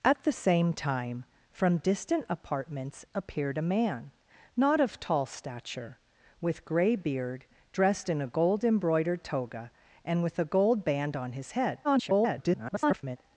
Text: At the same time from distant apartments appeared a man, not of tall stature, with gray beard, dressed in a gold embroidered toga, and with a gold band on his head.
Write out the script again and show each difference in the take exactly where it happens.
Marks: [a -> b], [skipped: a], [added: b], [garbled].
At the same time from distant apartments appeared a man, not of tall stature, with gray beard, dressed in a gold embroidered toga, and with a gold band on his head. [garbled]